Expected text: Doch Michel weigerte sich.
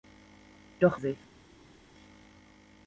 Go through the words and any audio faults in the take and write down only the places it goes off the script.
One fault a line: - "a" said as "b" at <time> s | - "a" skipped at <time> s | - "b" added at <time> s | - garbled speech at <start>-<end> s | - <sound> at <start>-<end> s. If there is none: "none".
- "Michel weigerte" skipped at 1.0 s